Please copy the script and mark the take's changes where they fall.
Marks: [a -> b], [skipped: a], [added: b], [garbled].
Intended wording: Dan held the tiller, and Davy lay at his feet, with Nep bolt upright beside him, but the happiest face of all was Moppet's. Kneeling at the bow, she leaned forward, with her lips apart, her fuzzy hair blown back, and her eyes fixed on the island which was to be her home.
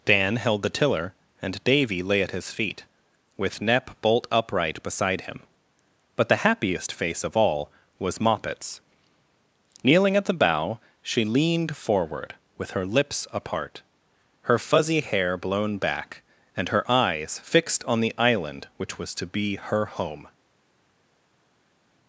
Dan held the tiller, and Davy lay at his feet, with Nep bolt upright beside him, but the happiest face of all was Moppet's. Kneeling at the bow, she leaned forward, with her lips apart, her fuzzy hair blown back, and her eyes fixed on the island which was to be her home.